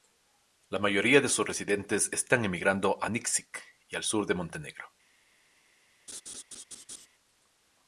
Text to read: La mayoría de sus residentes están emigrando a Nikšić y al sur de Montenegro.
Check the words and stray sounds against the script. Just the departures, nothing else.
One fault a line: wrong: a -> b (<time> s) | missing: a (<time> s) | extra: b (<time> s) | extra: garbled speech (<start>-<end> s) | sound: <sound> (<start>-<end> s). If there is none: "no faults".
sound: laugh (6.1-7.1 s)